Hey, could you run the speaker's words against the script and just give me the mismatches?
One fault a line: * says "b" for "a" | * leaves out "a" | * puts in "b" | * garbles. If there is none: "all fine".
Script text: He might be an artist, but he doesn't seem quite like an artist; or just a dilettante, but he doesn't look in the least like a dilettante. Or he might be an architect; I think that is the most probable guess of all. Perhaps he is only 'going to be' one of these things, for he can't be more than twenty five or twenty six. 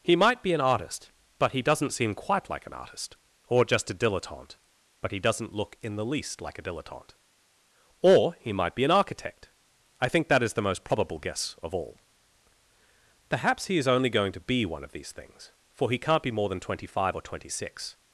all fine